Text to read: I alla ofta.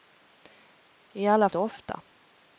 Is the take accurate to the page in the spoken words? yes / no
yes